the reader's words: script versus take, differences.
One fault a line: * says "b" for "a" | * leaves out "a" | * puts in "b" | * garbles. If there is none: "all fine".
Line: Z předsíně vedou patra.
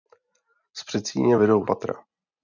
all fine